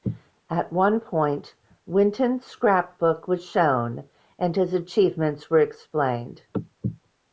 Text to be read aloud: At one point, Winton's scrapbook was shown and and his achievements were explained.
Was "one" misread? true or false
false